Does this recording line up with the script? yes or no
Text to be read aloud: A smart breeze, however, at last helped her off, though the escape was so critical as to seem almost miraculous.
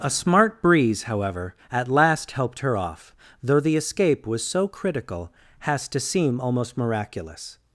no